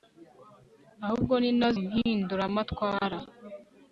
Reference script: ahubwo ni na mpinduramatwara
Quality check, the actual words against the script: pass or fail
pass